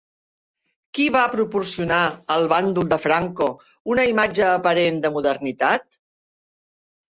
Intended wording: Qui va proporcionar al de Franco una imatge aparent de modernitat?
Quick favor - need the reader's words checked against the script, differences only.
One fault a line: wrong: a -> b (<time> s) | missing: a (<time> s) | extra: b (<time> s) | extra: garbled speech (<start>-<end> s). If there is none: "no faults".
extra: bàndol (2.5 s)